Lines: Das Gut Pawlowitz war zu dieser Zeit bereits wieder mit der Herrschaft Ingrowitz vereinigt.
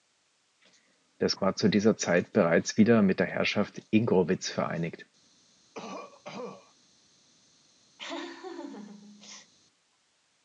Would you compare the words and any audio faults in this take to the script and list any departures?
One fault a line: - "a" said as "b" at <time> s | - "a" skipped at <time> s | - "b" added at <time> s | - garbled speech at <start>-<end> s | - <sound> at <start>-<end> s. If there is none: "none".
- "Gut Pawlowitz" skipped at 1.4 s
- cough at 5.7-6.7 s
- laugh at 8.0-9.5 s